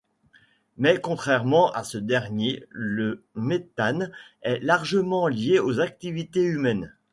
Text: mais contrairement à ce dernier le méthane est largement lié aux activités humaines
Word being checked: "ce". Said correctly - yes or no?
yes